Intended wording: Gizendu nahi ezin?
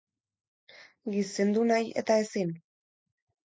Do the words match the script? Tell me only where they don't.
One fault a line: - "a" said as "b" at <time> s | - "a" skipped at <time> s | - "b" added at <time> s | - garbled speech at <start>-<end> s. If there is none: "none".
- "eta" added at 2.0 s